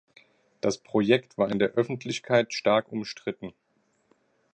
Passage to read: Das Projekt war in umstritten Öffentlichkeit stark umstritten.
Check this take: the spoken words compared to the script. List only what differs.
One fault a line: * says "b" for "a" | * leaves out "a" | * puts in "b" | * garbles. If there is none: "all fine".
* says "der" for "umstritten"